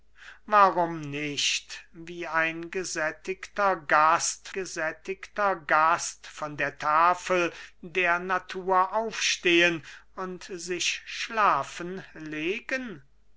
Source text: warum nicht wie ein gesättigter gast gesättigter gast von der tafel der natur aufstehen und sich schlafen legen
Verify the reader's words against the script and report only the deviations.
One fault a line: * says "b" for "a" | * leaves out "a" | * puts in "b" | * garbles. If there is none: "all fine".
all fine